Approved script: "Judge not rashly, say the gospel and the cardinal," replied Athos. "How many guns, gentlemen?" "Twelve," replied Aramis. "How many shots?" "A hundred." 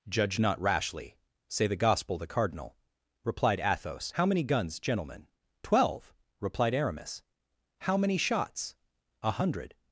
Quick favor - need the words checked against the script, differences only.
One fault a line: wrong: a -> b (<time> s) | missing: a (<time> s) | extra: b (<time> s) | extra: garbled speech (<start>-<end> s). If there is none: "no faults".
missing: and (2.2 s)